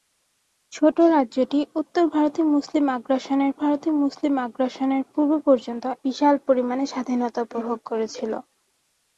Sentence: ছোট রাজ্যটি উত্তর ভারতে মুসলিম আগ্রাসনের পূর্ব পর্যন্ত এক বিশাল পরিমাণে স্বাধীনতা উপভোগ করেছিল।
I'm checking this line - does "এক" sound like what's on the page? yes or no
no